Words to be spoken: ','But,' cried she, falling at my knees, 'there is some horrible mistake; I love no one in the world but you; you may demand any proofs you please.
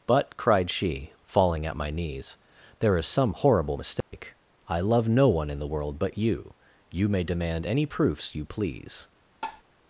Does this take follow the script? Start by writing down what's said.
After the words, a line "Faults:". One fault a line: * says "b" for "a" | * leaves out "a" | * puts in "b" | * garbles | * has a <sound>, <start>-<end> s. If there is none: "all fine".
','But,' cried she, falling at my knees, 'there is some horrible mistake; I love no one in the world but you; you may demand any proofs you please.
Faults:
* has a dropout, 4.0-4.1 s
* has a tap, 9.4-9.6 s